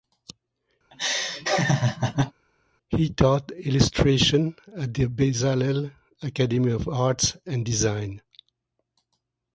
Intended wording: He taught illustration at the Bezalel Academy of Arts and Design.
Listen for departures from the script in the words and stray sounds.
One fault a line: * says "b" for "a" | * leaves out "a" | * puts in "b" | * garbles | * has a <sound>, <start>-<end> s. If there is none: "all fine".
* has a laugh, 0.9-2.3 s